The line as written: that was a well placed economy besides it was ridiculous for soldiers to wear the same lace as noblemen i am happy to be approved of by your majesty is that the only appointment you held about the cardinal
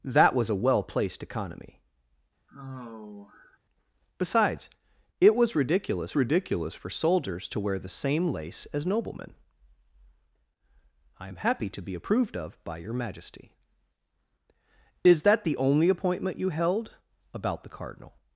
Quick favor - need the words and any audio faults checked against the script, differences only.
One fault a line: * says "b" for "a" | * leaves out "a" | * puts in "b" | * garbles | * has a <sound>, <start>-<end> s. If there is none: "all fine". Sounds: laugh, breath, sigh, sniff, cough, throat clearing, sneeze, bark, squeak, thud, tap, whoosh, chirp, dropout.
* has a sigh, 2.5-3.6 s
* puts in "ridiculous"